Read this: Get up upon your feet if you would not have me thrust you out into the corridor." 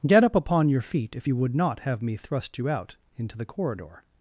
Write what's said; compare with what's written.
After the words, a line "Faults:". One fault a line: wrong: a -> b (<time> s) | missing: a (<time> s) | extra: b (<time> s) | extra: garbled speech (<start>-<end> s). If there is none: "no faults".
Get up upon your feet if you would not have me thrust you out into the corridor."
Faults:
no faults